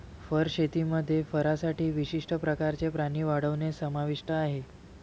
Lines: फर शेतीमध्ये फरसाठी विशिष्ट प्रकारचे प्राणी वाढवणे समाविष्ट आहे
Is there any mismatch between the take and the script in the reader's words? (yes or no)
no